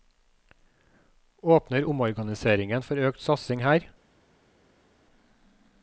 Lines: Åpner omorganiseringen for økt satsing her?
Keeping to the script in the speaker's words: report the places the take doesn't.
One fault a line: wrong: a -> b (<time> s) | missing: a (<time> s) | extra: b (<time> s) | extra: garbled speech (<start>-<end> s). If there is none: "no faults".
no faults